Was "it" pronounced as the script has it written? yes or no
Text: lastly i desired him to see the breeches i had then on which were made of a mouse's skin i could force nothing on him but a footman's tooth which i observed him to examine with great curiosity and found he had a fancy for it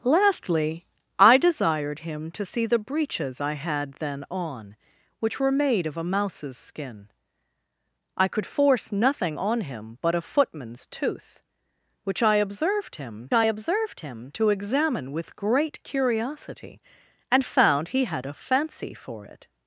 yes